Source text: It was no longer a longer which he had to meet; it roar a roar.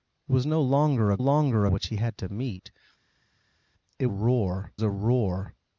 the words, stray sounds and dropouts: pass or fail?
pass